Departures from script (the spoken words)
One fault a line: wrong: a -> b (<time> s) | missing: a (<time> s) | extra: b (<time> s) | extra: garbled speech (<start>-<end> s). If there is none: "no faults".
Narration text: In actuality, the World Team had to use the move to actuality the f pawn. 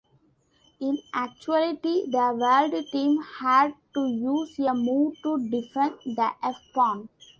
wrong: the -> a (4.6 s)
wrong: actuality -> defend (5.5 s)